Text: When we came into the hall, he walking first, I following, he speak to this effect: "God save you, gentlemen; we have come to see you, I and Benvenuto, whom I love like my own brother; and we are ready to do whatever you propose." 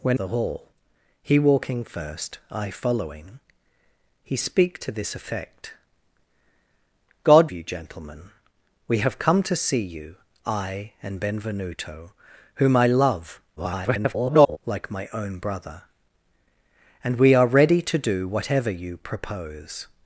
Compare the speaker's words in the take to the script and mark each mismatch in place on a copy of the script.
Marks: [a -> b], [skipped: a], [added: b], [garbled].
When [skipped: we came into] the hall, he walking first, I following, he speak to this effect: "God [skipped: save] you, gentlemen; we have come to see you, I and Benvenuto, whom I love [garbled] like my own brother; and we are ready to do whatever you propose."